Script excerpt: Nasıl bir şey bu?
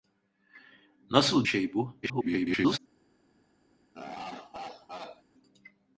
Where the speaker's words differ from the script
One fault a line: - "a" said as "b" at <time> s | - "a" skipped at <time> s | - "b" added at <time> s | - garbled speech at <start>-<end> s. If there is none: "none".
- "bir" skipped at 1.5 s
- garbled speech at 2.0-2.8 s